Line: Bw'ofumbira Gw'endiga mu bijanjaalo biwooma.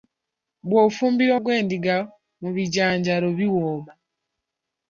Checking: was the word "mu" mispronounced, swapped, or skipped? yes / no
no